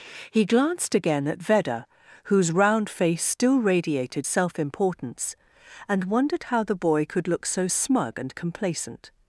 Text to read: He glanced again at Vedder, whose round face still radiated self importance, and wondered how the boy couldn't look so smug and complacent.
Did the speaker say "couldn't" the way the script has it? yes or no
no